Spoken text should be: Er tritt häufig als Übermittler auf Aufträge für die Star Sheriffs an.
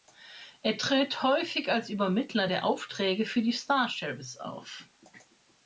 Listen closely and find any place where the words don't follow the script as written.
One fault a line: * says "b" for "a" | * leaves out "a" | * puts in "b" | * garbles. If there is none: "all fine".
* says "der" for "auf"
* says "auf" for "an"